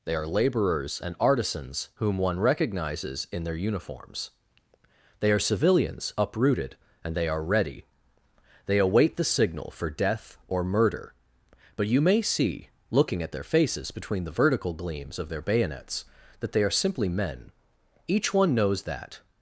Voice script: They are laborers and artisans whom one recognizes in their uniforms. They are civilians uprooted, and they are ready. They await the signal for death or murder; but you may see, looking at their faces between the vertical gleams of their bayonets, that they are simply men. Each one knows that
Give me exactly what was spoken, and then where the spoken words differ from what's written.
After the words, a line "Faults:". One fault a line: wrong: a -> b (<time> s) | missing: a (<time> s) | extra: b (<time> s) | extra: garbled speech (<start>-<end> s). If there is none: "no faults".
They are laborers and artisans whom one recognizes in their uniforms. They are civilians uprooted, and they are ready. They await the signal for death or murder; but you may see, looking at their faces between the vertical gleams of their bayonets, that they are simply men. Each one knows that
Faults:
no faults